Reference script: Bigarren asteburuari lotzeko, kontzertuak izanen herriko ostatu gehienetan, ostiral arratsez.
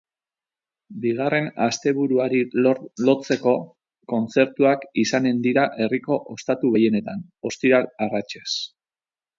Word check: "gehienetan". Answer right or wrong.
right